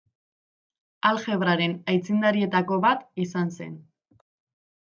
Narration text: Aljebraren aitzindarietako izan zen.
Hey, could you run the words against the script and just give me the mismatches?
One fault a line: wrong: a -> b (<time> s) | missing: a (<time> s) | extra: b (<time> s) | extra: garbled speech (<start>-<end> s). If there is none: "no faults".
extra: bat (2.9 s)